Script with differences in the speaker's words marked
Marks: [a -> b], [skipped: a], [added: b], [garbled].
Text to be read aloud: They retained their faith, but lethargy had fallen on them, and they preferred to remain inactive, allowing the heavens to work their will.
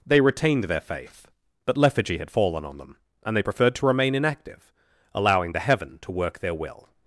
They retained their faith, but lethargy had fallen on them, and they preferred to remain inactive, allowing the [heavens -> heaven] to work their will.